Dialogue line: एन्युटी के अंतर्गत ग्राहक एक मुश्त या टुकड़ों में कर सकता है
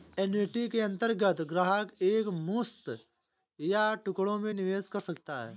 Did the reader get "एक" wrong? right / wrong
right